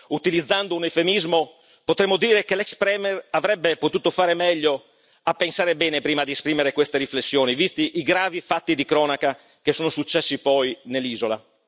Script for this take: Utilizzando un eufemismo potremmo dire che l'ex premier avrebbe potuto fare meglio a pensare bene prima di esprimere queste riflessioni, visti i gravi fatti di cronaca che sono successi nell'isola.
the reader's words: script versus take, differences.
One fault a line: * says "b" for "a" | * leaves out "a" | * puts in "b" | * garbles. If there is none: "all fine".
* puts in "poi"